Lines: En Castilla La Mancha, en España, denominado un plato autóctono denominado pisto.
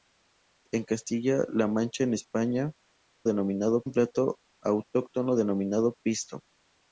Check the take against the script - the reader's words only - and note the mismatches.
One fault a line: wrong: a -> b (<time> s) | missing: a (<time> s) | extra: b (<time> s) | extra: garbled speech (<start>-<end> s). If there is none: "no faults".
no faults